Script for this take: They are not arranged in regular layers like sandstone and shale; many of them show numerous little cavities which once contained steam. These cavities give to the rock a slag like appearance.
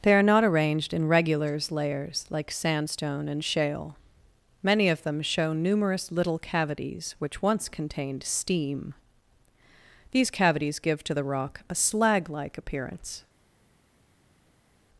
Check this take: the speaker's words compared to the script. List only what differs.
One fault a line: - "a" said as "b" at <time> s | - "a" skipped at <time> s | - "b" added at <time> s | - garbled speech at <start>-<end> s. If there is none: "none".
- "regular" said as "regulars" at 1.1 s